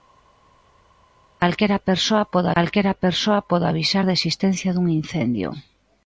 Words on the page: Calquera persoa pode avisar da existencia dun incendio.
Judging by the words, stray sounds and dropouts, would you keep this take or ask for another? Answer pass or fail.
fail